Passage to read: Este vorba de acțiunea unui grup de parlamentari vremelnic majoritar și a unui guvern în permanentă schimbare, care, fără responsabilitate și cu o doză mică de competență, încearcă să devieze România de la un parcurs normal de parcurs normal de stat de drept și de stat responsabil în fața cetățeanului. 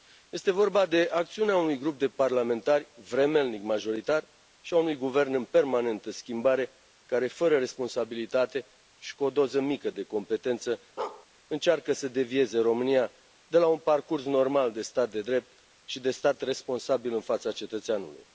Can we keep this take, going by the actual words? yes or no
no